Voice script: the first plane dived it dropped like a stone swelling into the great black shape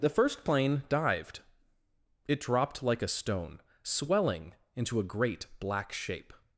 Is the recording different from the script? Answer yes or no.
yes